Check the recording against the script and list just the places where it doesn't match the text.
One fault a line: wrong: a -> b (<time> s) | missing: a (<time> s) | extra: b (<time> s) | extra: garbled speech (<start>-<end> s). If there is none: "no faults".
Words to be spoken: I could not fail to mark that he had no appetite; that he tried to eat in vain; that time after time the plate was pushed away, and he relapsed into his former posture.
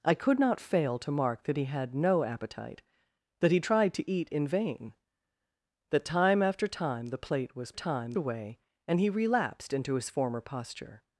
wrong: pushed -> time (7.7 s)